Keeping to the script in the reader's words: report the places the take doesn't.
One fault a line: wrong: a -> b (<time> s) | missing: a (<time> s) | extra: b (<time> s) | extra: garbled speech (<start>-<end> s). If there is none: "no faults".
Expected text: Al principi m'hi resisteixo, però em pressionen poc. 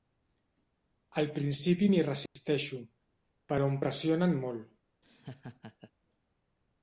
wrong: poc -> molt (4.5 s)